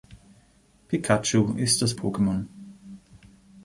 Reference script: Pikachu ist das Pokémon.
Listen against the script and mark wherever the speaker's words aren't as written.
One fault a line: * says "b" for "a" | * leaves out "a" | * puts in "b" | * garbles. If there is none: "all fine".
all fine